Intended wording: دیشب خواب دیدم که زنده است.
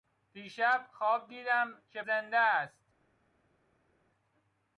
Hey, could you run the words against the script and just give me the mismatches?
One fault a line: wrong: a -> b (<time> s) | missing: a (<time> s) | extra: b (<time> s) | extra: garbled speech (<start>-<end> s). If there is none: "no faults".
no faults